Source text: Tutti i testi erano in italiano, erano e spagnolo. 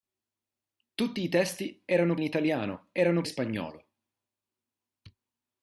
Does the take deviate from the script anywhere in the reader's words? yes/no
no